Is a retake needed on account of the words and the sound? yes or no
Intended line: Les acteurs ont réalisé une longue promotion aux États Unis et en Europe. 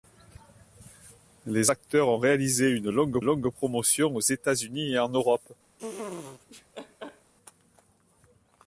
yes